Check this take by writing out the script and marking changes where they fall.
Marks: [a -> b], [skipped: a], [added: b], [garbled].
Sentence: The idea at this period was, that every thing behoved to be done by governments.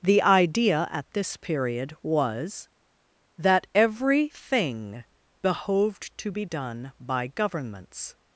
The idea at this period was, that every thing behoved to be done by governments.